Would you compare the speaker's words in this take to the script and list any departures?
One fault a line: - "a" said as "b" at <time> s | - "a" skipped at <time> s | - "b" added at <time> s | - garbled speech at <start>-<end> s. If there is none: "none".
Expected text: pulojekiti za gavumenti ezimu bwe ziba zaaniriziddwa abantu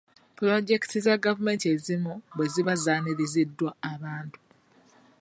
none